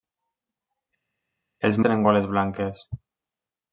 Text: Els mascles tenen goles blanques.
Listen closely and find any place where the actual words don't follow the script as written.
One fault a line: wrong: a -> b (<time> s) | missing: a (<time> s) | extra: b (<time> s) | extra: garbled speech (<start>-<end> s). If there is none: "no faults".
missing: mascles (1.8 s)